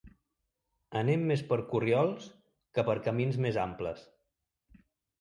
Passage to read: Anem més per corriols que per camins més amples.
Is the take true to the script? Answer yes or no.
yes